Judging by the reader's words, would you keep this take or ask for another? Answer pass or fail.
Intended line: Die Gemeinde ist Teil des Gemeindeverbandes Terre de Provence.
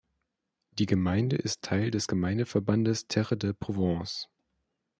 pass